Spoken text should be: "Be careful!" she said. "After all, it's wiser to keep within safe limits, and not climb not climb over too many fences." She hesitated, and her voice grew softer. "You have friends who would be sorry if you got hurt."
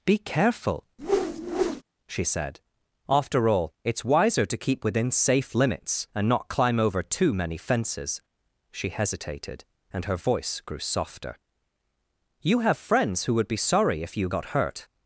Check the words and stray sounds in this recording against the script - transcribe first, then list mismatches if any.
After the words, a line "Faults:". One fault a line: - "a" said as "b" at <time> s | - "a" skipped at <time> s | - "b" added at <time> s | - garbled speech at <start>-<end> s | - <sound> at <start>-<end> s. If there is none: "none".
"Be careful!" she said. "After all, it's wiser to keep within safe limits, and not climb over too many fences." She hesitated, and her voice grew softer. "You have friends who would be sorry if you got hurt."
Faults:
- whoosh at 1.0-1.8 s
- "not climb" skipped at 6.8 s